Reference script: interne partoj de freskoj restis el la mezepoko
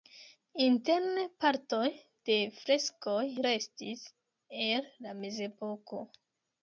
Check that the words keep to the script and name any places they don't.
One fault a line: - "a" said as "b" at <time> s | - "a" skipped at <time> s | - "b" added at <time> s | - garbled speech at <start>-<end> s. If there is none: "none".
none